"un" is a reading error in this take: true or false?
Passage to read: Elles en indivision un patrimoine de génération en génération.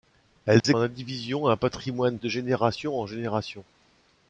false